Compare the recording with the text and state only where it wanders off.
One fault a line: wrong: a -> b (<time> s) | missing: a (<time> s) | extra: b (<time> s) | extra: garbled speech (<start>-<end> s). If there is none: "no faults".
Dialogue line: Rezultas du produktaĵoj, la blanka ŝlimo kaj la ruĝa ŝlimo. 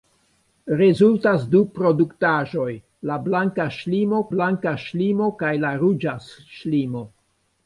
extra: blanka ŝlimo (4.4 s)